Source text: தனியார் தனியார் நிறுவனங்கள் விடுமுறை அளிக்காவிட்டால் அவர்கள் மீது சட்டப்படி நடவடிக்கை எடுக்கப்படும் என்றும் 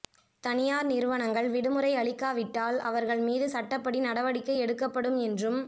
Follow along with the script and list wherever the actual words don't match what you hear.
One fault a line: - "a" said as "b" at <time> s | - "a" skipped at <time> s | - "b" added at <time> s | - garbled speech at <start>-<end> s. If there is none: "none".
- "தனியார்" skipped at 0.9 s